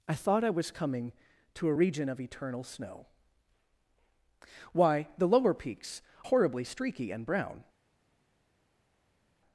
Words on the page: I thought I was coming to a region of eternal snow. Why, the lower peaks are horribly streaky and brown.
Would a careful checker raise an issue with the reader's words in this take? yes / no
yes